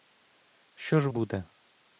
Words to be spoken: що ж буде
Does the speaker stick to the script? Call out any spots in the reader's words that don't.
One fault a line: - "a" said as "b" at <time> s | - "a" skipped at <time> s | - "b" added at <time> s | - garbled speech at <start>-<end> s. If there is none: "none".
none